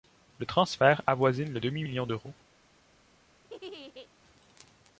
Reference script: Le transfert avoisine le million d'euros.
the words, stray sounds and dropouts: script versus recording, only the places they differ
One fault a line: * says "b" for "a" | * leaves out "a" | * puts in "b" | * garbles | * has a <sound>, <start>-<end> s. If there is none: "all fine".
* puts in "demi"
* has a laugh, 3.4-4.1 s